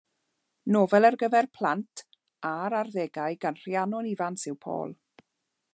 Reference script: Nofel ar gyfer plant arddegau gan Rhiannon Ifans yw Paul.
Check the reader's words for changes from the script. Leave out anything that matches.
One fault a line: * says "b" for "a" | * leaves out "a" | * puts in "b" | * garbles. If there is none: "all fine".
* puts in "a'r"